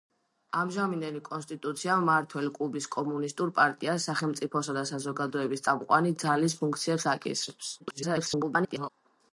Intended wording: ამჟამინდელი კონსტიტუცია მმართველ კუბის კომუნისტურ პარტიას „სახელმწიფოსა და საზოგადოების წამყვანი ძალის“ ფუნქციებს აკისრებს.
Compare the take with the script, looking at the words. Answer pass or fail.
fail